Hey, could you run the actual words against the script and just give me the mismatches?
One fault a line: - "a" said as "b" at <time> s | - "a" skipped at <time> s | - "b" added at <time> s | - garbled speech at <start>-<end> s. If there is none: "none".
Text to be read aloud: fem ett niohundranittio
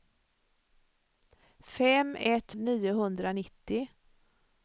none